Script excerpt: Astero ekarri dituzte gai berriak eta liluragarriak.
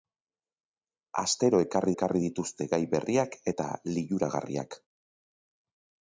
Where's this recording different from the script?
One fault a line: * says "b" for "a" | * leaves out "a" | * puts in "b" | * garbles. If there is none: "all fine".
* puts in "ekarri"